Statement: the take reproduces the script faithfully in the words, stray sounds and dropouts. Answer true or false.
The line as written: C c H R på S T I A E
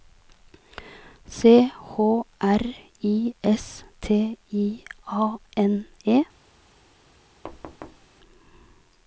false